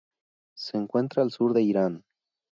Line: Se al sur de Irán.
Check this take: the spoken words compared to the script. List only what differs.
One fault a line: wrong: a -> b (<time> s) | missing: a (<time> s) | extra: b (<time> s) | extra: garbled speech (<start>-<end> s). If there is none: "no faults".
extra: encuentra (0.8 s)